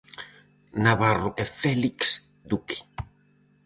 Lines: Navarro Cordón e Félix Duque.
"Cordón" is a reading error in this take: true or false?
true